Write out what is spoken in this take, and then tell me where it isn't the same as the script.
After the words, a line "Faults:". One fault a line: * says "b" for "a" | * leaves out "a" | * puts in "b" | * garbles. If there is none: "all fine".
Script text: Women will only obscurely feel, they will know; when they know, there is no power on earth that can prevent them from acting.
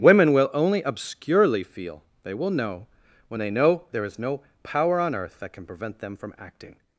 Women will only obscurely feel, they will know; when they know, there is no power on earth that can prevent them from acting.
Faults:
all fine